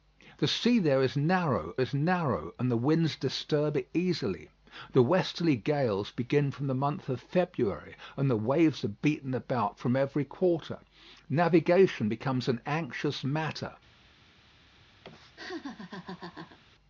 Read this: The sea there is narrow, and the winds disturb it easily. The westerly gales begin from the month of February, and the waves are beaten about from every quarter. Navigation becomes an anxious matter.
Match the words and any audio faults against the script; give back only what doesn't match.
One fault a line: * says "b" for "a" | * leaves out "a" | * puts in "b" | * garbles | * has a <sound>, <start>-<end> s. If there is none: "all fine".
* puts in "is narrow"
* has a laugh, 15.0-16.6 s